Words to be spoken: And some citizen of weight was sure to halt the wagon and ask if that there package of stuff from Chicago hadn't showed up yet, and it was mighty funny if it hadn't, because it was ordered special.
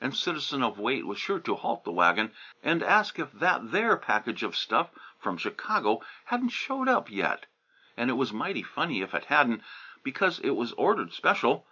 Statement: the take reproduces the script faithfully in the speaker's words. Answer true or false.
false